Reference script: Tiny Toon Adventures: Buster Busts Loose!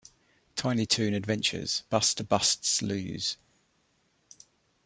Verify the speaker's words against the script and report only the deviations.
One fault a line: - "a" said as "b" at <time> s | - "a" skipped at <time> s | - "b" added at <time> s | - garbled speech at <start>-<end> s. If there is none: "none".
none